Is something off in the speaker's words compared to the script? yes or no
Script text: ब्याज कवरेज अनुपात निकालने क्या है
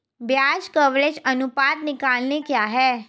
no